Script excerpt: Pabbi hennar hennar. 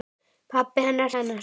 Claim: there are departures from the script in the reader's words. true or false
false